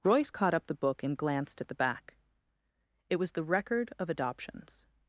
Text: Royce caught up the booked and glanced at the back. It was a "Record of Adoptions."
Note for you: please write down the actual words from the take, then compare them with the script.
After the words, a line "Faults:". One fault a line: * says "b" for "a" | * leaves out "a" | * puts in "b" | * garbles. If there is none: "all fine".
Royce caught up the book and glanced at the back. It was the "Record of Adoptions."
Faults:
* says "book" for "booked"
* says "the" for "a"